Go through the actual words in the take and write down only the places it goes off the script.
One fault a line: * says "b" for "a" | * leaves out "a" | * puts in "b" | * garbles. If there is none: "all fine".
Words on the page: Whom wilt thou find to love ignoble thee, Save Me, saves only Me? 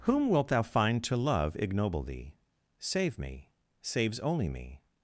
all fine